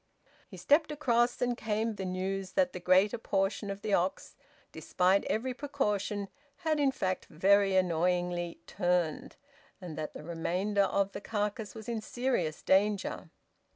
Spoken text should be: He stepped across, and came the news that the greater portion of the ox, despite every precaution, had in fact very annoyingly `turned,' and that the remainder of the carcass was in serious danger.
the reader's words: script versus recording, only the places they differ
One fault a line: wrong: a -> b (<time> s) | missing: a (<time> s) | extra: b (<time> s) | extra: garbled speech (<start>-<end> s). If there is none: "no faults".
no faults